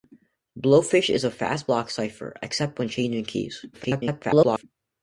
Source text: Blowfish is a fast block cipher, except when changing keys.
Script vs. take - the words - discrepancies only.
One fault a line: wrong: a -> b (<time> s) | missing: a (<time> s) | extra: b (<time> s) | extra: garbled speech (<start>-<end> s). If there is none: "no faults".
extra: garbled speech (3.7-4.6 s)